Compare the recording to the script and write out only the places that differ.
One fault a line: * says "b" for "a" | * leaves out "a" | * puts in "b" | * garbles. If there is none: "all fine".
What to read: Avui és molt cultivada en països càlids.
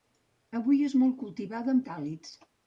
* leaves out "països"